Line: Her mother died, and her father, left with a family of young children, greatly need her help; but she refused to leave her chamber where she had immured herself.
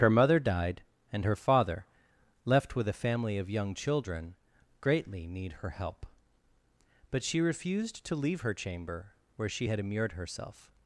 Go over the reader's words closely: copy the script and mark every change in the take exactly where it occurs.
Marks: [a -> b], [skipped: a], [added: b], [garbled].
Her mother died, and her father, left with a family of young children, greatly need her help; but she refused to leave her chamber where she had immured herself.